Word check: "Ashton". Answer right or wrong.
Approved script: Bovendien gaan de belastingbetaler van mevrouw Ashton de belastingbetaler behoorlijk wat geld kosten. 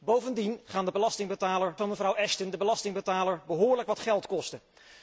right